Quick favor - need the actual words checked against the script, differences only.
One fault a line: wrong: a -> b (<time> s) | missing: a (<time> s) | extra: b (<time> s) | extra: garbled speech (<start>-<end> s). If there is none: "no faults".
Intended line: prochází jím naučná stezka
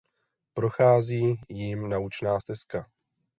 no faults